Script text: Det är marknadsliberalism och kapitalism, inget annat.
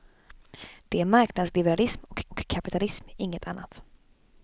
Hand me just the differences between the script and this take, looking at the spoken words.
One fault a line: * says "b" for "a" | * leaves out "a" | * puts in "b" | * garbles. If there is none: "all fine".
* puts in "och"